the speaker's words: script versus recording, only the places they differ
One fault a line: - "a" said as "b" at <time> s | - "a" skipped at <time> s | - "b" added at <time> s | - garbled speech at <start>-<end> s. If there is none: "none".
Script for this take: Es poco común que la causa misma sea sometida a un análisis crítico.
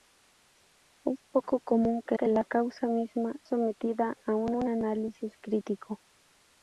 - "que" added at 2.2 s
- "sea" skipped at 3.4 s
- "un" added at 4.5 s